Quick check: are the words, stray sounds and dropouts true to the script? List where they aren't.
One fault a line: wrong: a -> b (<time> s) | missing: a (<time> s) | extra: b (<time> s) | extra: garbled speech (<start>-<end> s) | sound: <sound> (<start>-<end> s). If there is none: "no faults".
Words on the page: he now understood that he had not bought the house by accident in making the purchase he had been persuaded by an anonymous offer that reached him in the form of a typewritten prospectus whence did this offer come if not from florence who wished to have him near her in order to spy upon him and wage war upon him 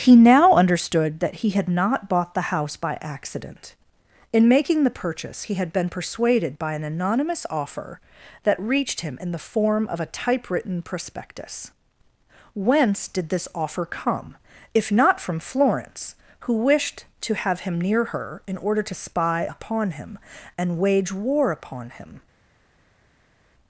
no faults